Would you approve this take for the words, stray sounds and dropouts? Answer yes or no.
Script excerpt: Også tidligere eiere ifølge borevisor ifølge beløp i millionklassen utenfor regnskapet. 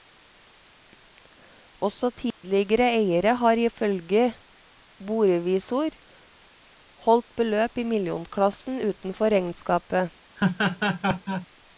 no